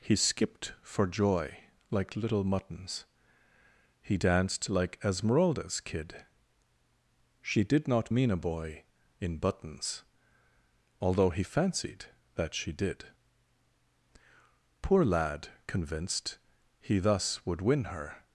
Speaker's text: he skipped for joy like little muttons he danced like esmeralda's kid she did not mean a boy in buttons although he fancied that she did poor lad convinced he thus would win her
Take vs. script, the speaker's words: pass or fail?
pass